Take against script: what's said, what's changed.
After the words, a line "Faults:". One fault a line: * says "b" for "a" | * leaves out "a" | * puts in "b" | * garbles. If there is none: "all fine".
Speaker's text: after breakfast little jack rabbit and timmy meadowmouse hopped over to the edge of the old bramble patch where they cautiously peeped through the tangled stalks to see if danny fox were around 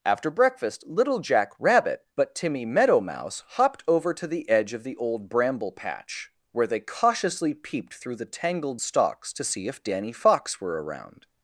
after breakfast little jack rabbit but timmy meadowmouse hopped over to the edge of the old bramble patch where they cautiously peeped through the tangled stalks to see if danny fox were around
Faults:
* says "but" for "and"